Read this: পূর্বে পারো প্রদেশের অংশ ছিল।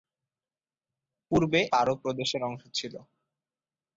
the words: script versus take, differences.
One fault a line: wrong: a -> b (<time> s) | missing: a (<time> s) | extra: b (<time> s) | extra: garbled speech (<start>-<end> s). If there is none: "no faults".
no faults